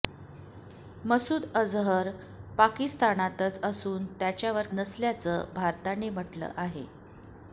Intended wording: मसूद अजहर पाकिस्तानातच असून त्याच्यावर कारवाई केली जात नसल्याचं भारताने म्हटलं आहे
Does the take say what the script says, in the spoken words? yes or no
no